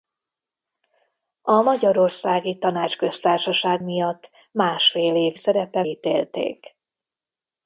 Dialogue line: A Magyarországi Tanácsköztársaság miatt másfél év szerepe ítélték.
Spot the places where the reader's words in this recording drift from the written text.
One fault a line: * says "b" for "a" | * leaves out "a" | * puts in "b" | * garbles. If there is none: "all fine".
all fine